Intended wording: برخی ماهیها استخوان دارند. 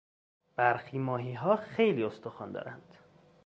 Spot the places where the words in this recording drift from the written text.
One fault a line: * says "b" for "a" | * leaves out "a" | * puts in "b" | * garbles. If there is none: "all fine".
* puts in "خیلی"